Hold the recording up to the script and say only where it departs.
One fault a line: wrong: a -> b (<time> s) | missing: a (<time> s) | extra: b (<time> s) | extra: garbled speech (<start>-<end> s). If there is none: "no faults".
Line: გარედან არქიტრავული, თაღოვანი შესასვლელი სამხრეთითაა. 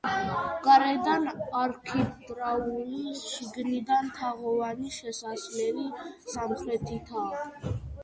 extra: შიგნიდან (3.2 s)